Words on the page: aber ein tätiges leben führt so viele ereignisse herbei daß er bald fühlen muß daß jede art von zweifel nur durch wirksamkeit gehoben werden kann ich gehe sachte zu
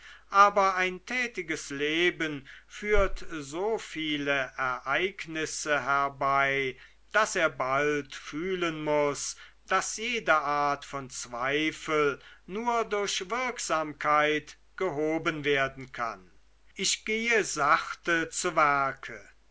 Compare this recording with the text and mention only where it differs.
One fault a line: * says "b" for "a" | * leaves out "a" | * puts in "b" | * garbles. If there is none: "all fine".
all fine